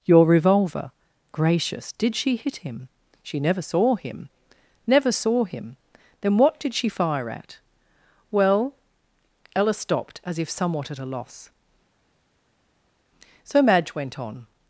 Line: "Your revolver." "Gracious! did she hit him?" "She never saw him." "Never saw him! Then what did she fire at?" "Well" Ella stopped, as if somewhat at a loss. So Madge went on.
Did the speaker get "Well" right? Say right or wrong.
right